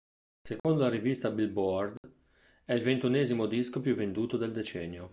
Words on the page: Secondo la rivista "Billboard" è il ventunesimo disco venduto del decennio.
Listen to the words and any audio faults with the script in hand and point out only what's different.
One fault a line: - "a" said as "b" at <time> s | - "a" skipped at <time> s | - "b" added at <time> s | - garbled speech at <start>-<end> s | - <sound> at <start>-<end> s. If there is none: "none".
- dropout at 0.6-0.6 s
- dropout at 2.0-2.0 s
- "più" added at 3.8 s